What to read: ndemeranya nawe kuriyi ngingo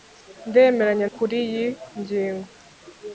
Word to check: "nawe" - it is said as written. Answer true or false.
false